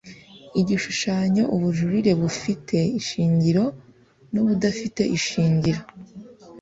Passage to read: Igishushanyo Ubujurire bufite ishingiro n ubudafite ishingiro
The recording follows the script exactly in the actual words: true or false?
true